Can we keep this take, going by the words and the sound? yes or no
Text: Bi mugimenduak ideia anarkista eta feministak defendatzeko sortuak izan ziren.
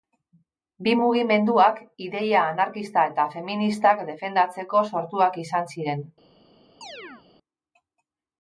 no